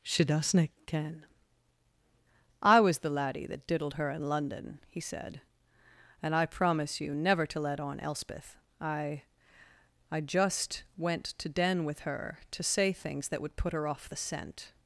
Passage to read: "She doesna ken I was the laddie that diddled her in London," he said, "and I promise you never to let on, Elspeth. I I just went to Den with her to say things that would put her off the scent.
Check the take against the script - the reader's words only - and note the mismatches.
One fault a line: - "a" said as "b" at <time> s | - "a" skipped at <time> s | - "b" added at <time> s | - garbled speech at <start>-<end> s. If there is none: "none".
none